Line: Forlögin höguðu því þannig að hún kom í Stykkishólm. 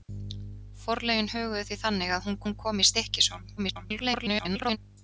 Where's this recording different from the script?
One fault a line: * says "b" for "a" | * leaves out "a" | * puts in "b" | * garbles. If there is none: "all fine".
* puts in "hún"
* garbles